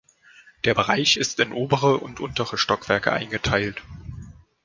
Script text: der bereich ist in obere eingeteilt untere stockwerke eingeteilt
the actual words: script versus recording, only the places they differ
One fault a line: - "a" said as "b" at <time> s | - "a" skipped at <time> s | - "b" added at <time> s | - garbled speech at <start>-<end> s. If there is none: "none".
- "eingeteilt" said as "und" at 2.0 s